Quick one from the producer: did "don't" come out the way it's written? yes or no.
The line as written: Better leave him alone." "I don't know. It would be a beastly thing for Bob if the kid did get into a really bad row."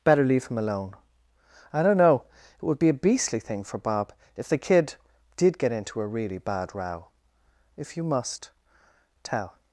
yes